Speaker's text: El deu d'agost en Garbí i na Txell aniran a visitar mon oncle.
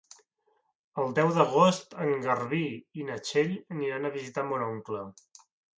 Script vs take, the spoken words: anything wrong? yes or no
no